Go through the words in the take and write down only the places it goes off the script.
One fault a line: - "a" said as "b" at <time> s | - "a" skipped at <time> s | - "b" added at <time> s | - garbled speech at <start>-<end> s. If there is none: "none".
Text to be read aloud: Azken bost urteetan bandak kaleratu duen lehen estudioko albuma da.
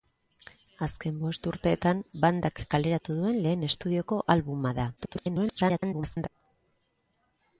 - garbled speech at 5.0-6.3 s